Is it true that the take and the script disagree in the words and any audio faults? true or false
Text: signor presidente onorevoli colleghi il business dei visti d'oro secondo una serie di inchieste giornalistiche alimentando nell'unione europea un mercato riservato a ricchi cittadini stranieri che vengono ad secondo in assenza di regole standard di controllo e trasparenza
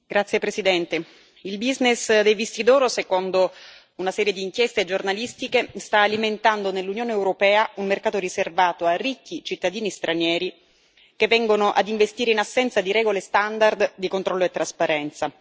true